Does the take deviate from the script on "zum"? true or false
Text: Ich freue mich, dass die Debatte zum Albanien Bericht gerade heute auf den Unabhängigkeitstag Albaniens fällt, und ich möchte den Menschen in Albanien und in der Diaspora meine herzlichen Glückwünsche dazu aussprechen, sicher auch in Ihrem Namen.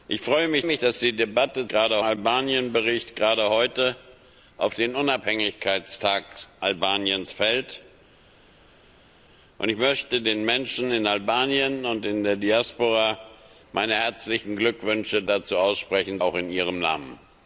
true